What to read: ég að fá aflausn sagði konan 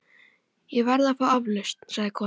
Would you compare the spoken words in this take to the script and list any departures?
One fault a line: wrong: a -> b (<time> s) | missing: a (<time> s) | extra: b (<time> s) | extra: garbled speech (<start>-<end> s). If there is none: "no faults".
extra: verð (0.9 s)